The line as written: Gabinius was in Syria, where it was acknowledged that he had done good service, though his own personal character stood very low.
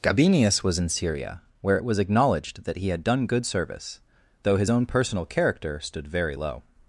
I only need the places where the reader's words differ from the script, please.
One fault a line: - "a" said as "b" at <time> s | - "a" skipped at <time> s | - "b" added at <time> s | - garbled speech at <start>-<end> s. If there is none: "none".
none